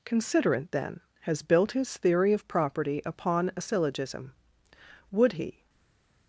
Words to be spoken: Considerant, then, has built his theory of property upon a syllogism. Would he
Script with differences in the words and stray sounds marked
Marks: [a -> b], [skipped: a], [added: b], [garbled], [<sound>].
Considerant, then, has built his theory of property upon a syllogism. Would he